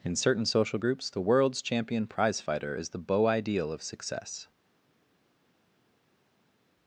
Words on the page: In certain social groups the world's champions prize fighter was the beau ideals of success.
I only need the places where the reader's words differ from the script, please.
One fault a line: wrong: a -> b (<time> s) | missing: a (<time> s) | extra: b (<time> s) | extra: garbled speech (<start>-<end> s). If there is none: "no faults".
wrong: champions -> champion (1.6 s)
wrong: was -> is (2.7 s)
wrong: ideals -> ideal (3.3 s)